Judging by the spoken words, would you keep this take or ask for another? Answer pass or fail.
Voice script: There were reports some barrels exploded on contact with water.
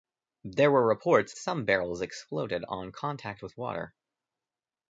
pass